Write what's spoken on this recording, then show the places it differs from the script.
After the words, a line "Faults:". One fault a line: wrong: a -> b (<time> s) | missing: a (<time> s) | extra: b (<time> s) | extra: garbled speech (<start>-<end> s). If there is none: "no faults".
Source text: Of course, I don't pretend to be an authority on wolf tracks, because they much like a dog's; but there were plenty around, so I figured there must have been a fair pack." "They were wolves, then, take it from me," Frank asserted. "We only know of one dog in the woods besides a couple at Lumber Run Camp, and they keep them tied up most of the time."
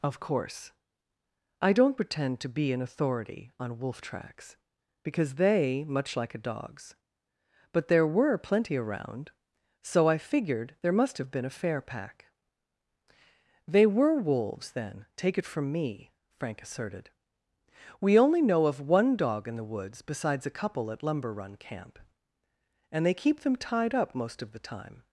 Of course, I don't pretend to be an authority on wolf tracks, because they much like a dog's; but there were plenty around, so I figured there must have been a fair pack." "They were wolves, then, take it from me," Frank asserted. "We only know of one dog in the woods besides a couple at Lumber Run Camp, and they keep them tied up most of the time."
Faults:
no faults